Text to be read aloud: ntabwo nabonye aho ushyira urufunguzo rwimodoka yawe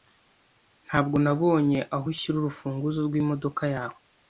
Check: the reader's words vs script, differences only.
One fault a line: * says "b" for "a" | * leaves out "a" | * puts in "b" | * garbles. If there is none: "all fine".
all fine